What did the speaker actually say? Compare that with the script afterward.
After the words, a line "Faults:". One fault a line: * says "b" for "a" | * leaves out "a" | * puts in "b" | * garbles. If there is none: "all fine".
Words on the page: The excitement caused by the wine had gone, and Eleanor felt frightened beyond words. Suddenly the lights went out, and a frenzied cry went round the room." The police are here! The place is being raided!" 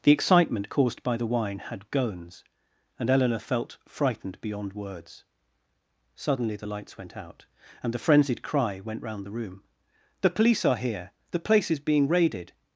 The excitement caused by the wine had gones, and Eleanor felt frightened beyond words. Suddenly the lights went out, and the frenzied cry went round the room." The police are here! The place is being raided!"
Faults:
* says "gones" for "gone"
* says "the" for "a"